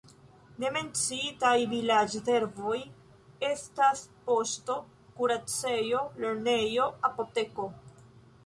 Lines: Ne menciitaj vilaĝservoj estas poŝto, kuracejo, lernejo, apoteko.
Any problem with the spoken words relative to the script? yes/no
no